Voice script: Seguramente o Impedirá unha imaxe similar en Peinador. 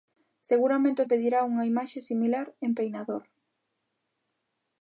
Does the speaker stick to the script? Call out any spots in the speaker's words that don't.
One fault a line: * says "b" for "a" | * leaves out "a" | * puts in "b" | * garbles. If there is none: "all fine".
all fine